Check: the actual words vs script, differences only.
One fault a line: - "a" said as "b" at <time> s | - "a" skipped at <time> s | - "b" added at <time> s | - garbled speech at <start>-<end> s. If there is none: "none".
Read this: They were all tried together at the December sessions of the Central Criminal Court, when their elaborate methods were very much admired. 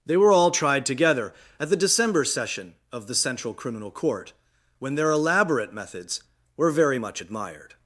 - "sessions" said as "session" at 2.2 s